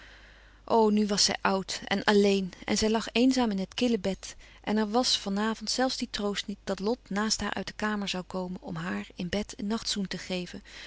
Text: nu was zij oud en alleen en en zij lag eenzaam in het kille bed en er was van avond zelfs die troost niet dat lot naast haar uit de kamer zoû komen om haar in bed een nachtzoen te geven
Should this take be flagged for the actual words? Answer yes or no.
yes